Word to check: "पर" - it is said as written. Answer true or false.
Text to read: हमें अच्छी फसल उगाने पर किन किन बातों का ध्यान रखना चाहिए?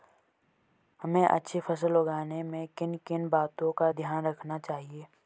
false